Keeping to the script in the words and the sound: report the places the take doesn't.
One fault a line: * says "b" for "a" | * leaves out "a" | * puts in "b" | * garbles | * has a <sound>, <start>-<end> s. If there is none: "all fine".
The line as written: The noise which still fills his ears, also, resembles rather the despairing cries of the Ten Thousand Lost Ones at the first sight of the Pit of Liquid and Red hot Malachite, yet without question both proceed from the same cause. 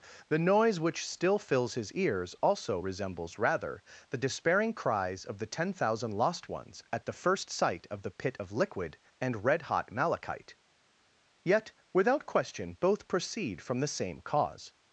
all fine